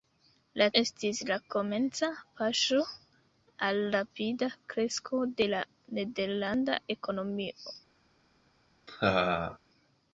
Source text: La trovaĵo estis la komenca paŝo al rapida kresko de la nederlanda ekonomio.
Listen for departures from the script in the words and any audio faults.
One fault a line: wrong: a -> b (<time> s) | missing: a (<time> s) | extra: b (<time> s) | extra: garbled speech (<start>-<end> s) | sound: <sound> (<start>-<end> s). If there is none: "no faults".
missing: trovaĵo (0.7 s)
sound: laugh (8.9-9.6 s)